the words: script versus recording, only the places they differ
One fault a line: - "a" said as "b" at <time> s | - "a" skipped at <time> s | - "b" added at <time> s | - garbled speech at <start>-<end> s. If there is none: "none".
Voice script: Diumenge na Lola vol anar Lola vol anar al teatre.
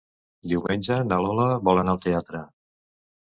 - "Lola vol anar" skipped at 2.0 s